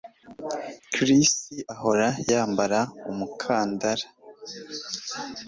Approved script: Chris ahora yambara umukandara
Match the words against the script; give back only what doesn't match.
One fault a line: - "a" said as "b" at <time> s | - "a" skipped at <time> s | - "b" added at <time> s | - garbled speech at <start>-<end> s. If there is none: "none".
none